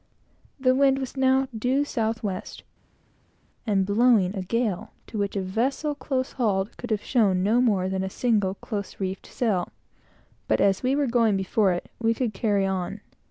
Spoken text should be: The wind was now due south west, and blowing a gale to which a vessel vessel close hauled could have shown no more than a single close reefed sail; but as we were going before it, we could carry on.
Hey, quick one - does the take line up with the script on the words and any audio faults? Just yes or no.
no